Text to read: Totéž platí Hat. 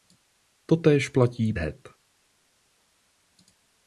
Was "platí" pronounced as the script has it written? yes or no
yes